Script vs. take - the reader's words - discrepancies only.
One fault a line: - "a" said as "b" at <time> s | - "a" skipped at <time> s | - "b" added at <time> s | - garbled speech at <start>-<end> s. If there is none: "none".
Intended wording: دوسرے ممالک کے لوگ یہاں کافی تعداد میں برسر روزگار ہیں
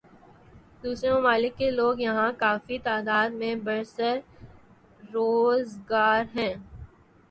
none